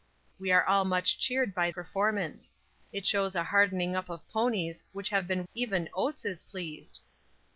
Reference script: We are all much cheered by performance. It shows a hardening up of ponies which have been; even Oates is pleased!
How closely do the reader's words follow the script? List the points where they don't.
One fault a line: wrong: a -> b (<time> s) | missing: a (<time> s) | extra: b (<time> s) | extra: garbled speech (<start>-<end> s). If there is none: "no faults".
no faults